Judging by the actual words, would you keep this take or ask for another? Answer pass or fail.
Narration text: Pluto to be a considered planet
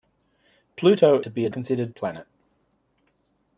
pass